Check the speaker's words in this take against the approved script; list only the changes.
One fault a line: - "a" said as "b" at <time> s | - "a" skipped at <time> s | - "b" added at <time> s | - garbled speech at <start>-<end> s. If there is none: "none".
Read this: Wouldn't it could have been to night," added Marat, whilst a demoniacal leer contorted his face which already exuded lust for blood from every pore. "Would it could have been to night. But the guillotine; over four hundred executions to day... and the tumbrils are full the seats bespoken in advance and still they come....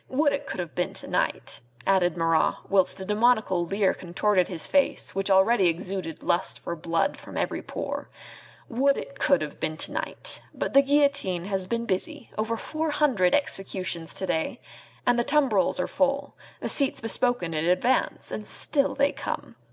- "Wouldn't" said as "Would" at 0.1 s
- "has been busy" added at 11.4 s